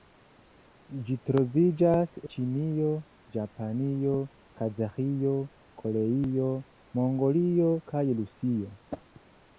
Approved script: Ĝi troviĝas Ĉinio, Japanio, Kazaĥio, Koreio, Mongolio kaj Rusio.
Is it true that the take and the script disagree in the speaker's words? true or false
false